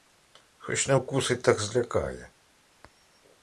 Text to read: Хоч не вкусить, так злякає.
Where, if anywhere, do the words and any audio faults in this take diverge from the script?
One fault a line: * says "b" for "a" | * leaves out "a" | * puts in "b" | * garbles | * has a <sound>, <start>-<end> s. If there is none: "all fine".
all fine